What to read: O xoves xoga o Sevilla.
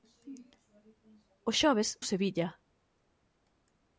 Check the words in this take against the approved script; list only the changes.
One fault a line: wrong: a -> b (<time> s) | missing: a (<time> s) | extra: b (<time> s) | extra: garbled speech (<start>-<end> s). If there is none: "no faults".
missing: xoga (1.9 s)